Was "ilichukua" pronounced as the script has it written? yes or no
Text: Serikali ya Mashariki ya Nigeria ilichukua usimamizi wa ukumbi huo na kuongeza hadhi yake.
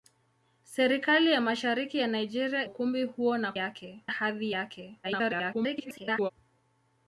no